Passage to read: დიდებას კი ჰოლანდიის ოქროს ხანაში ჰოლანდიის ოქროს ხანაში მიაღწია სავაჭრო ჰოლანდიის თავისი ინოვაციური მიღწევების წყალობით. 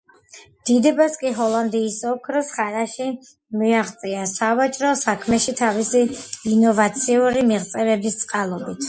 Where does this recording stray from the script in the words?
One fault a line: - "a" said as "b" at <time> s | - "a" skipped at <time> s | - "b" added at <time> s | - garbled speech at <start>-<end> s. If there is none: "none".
- "ჰოლანდიის ოქროს ხანაში" skipped at 3.1 s
- "ჰოლანდიის" said as "საქმეში" at 5.0 s